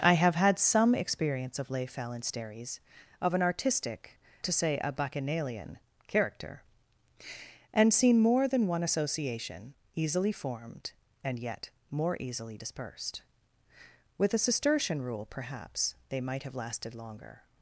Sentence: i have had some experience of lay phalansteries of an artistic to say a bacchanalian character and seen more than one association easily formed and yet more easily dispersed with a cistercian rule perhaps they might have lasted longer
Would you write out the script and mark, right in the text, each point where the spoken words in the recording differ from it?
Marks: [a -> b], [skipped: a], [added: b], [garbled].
i have had some experience of lay phalansteries of an artistic to say a bacchanalian character and seen more than one association easily formed and yet more easily dispersed with a cistercian rule perhaps they might have lasted longer